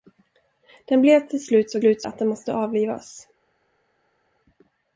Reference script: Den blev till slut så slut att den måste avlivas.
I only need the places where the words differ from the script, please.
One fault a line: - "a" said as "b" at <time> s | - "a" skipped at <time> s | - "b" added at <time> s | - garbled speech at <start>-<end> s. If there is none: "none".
none